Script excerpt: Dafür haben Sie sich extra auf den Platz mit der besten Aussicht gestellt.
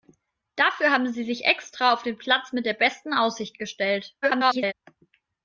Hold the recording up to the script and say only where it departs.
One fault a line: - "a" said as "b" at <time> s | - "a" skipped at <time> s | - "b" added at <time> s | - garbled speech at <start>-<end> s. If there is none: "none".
- garbled speech at 4.2-4.7 s